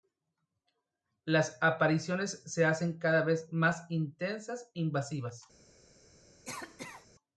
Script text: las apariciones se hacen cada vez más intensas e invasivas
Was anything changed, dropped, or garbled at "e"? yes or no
yes